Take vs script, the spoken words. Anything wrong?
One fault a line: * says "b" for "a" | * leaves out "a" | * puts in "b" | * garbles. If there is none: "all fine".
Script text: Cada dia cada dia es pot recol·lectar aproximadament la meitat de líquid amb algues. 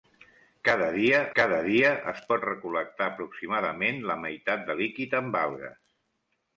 all fine